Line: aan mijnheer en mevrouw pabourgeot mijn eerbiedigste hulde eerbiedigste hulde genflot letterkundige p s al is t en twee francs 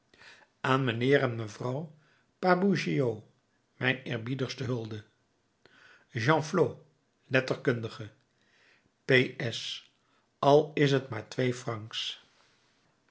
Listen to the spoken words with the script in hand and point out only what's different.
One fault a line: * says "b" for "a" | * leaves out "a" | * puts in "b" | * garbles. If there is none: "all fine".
* leaves out "eerbiedigste hulde"
* says "maar" for "en"